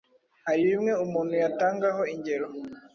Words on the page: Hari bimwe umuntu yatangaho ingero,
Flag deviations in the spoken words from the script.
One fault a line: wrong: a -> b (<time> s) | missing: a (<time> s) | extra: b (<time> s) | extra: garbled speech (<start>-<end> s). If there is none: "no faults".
no faults